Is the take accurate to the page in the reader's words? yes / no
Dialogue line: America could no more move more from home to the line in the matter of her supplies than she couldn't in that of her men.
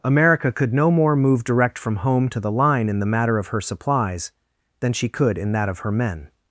no